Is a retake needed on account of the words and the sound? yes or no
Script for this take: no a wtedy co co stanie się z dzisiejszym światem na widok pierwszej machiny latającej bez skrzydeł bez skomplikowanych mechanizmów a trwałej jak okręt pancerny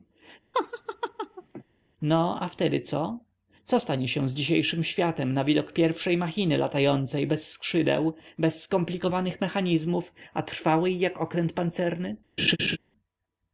yes